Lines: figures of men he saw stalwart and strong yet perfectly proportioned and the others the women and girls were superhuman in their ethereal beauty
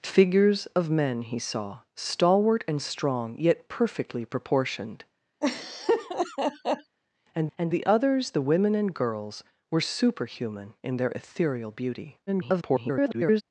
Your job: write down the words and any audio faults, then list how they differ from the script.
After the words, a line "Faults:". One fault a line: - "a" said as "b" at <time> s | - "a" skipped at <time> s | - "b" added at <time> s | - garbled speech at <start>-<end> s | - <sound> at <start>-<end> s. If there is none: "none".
figures of men he saw stalwart and strong yet perfectly proportioned and and the others the women and girls were superhuman in their ethereal beauty [garbled]
Faults:
- laugh at 5.4-7.0 s
- "and" added at 7.6 s
- garbled speech at 12.3-13.4 s